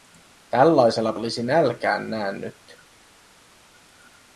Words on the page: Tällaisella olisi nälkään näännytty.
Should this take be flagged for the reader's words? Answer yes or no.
no